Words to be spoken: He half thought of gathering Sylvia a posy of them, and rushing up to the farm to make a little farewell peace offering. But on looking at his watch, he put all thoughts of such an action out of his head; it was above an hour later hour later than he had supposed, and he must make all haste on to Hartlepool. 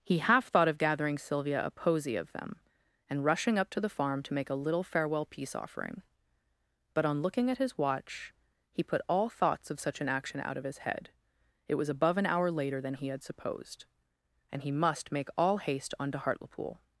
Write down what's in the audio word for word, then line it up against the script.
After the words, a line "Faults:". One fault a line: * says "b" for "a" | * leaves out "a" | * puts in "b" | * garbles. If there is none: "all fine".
He half thought of gathering Sylvia a posy of them, and rushing up to the farm to make a little farewell peace offering. But on looking at his watch, he put all thoughts of such an action out of his head; it was above an hour later than he had supposed, and he must make all haste on to Hartlepool.
Faults:
* leaves out "hour later"